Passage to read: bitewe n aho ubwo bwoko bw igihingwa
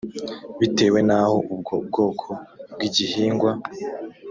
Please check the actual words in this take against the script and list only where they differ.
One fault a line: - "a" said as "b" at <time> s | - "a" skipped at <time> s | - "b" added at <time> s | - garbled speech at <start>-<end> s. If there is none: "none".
none